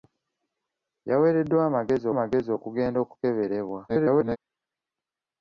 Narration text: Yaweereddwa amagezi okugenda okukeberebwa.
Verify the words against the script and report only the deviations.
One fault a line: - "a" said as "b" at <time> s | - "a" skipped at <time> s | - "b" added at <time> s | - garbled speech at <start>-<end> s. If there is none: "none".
- "amagezi" added at 2.1 s
- garbled speech at 3.9-4.4 s